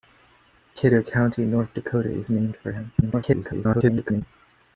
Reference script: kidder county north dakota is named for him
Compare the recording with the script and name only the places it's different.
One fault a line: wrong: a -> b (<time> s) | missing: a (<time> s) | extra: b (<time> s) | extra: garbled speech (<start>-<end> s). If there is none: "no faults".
extra: garbled speech (3.0-4.2 s)